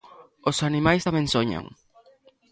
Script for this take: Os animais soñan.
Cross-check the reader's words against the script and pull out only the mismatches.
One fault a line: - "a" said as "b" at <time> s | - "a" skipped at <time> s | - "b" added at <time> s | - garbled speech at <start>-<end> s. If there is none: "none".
- "tamén" added at 1.1 s